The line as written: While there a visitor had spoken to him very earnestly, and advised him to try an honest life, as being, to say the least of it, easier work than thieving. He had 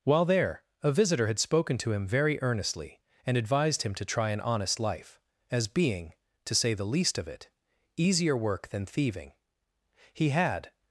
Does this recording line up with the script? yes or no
yes